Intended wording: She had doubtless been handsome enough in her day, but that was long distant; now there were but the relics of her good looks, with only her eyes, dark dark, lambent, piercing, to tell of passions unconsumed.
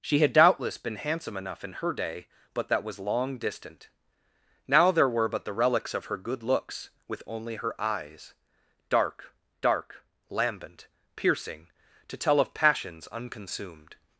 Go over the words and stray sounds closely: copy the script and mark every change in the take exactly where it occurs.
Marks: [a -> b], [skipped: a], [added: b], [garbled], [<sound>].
She had doubtless been handsome enough in her day, but that was long distant; now there were but the relics of her good looks, with only her eyes, dark dark, lambent, piercing, to tell of passions unconsumed.